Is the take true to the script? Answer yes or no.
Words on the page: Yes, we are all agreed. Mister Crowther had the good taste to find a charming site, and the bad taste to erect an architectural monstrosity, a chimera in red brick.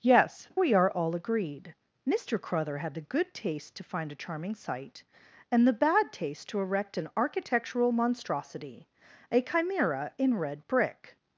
yes